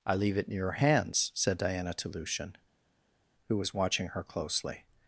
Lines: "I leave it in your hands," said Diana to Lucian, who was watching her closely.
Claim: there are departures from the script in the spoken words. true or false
false